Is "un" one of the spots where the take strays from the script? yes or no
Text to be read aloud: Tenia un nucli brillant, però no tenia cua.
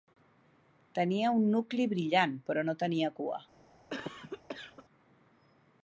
no